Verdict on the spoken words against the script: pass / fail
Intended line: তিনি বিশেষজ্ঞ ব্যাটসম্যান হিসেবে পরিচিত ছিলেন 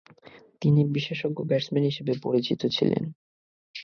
pass